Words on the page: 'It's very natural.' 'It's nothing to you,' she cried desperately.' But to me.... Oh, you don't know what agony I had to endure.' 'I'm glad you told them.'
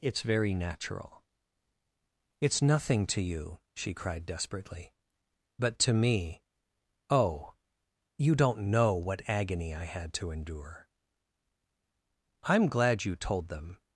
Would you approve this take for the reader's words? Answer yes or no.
yes